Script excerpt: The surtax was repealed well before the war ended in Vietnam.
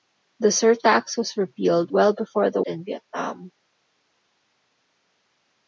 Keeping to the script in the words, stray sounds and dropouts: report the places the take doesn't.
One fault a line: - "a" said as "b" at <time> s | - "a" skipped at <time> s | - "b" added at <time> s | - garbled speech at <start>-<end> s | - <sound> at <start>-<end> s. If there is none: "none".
- "war ended" skipped at 2.6 s